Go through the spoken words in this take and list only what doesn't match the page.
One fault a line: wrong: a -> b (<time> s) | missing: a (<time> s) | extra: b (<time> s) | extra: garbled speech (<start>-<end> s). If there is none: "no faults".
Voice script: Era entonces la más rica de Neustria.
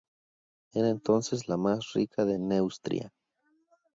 no faults